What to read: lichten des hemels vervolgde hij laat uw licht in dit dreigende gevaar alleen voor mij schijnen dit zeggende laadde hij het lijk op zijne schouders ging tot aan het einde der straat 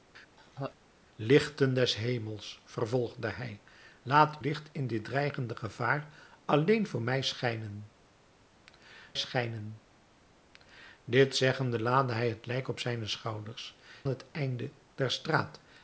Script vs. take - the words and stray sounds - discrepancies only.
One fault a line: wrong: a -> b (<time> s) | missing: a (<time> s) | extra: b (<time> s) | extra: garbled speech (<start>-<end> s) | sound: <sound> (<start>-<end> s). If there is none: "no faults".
sound: laugh (0.4-0.8 s)
missing: uw (4.4 s)
extra: schijnen (9.1 s)
missing: ging tot aan (13.8 s)